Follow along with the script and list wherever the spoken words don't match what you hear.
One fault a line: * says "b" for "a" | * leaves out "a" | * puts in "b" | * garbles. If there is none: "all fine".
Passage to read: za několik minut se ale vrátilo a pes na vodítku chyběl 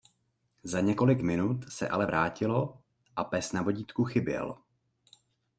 all fine